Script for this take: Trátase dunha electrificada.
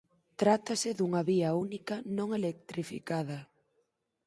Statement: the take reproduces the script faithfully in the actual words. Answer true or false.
false